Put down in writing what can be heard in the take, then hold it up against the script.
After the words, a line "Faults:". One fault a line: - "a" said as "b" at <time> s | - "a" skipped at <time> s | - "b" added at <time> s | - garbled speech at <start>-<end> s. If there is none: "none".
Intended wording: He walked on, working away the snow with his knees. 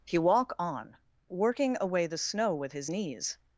He walk on, working away the snow with his knees.
Faults:
- "walked" said as "walk" at 0.2 s